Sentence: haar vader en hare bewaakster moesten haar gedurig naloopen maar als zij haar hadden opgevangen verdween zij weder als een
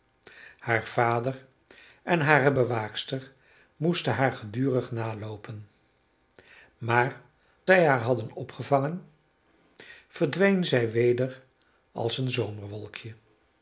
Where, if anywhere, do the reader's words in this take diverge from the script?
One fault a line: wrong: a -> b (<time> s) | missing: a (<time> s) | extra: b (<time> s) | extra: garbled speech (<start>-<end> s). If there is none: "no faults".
missing: als (7.2 s)